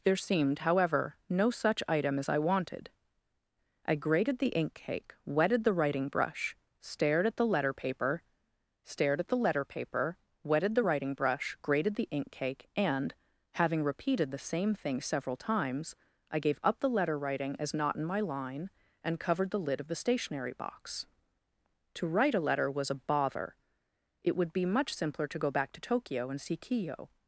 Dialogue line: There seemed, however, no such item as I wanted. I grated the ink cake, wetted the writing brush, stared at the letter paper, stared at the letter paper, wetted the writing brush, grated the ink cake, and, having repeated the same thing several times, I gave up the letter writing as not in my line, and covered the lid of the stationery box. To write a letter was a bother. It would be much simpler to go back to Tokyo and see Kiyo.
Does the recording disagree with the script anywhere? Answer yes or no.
no